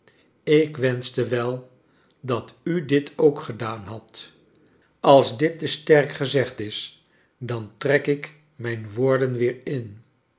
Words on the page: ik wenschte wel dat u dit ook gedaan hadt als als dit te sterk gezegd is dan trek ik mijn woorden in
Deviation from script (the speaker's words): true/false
true